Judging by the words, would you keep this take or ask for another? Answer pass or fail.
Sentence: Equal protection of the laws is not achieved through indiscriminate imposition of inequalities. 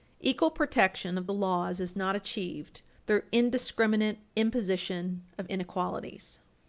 pass